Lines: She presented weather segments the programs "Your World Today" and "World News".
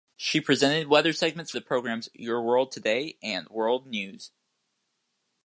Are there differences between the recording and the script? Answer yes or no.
no